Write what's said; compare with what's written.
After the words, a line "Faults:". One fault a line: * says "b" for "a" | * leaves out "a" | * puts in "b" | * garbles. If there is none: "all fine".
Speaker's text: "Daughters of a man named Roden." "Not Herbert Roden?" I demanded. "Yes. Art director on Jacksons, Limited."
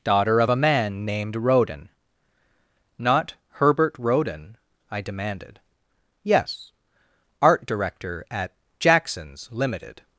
"Daughter of a man named Roden." "Not Herbert Roden?" I demanded. "Yes. Art director at Jacksons, Limited."
Faults:
* says "Daughter" for "Daughters"
* says "at" for "on"